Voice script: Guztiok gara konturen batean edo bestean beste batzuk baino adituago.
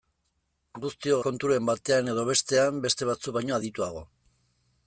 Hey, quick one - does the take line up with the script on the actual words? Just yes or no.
no